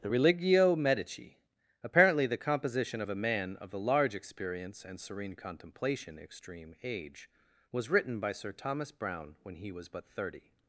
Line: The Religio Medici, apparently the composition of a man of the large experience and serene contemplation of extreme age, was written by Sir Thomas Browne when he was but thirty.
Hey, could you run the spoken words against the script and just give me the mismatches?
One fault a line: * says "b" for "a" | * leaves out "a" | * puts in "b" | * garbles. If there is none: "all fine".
* leaves out "of"